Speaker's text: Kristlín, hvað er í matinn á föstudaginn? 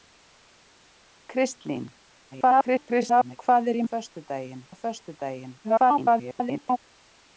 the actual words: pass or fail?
fail